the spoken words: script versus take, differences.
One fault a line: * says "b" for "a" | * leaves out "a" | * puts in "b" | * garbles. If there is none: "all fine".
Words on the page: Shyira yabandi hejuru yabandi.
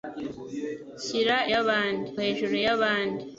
all fine